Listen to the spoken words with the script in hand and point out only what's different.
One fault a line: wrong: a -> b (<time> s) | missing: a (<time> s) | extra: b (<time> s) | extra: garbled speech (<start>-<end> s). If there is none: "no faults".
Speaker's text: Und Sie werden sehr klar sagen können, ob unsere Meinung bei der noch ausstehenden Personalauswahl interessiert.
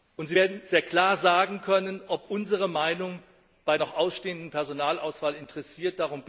missing: der (3.8 s)